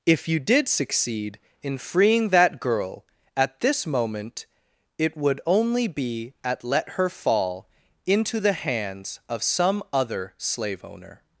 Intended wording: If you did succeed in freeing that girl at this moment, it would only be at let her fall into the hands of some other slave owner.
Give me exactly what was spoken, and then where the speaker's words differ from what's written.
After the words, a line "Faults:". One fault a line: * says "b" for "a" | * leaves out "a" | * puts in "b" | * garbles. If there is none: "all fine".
If you did succeed in freeing that girl at this moment, it would only be at let her fall into the hands of some other slave owner.
Faults:
all fine